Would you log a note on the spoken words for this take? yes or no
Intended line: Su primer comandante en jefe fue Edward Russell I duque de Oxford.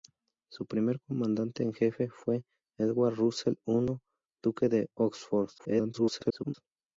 yes